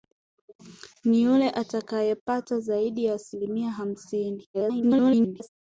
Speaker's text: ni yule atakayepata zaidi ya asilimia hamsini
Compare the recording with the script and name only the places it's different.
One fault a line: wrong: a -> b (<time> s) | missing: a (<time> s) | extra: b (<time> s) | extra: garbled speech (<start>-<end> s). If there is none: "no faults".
extra: garbled speech (4.5-5.5 s)